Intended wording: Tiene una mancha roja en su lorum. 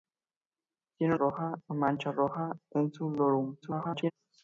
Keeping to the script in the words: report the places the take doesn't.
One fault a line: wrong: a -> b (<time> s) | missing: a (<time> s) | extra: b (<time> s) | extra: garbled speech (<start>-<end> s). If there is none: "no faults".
wrong: una -> roja (1.1 s)
extra: garbled speech (3.6-4.1 s)